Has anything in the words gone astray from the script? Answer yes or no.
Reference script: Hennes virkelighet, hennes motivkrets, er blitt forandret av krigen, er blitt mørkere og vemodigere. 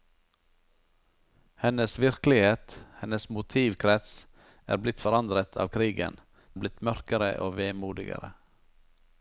no